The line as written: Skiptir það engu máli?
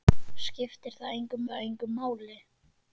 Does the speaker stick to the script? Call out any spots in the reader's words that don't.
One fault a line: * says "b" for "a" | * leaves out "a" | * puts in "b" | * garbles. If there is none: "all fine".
* puts in "það engu"